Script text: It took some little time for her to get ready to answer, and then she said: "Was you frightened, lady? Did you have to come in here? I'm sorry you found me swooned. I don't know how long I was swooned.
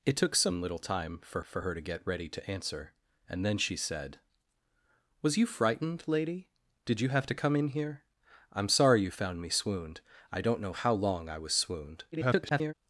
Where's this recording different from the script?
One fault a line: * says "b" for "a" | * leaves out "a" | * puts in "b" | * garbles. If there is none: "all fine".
* puts in "for"
* garbles